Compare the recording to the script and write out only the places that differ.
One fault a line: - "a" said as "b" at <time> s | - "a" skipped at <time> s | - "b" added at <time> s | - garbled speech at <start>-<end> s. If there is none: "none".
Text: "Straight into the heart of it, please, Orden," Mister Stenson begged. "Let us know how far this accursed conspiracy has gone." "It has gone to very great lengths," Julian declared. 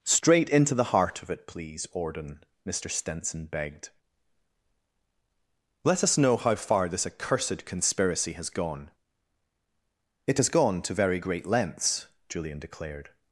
none